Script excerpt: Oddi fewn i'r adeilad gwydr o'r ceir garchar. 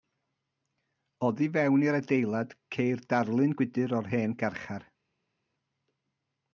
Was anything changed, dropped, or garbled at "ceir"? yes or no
yes